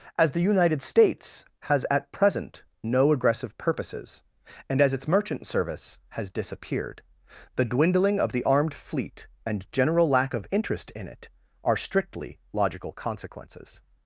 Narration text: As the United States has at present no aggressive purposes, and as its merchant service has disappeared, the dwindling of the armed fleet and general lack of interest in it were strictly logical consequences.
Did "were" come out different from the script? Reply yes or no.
yes